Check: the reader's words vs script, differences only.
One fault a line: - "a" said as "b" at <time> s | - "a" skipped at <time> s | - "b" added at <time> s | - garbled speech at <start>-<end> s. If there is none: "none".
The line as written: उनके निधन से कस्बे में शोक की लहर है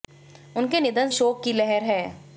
- "से कस्बे में" skipped at 1.1 s